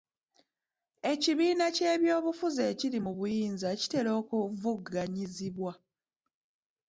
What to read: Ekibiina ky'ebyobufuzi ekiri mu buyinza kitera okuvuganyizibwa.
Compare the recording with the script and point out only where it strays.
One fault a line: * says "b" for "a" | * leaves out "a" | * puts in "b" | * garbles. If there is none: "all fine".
all fine